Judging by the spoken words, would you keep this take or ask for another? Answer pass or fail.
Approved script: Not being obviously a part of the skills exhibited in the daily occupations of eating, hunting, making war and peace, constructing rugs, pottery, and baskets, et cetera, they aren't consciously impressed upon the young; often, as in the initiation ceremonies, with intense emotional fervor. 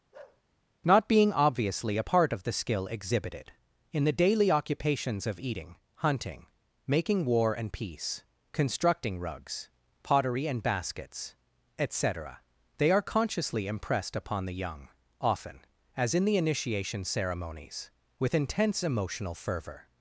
fail